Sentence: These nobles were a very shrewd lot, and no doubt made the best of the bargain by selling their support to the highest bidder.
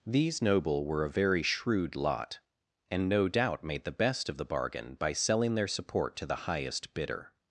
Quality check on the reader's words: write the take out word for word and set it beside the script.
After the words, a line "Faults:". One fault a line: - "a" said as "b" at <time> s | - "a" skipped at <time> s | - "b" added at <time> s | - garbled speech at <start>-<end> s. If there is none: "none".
These noble were a very shrewd lot, and no doubt made the best of the bargain by selling their support to the highest bidder.
Faults:
- "nobles" said as "noble" at 0.4 s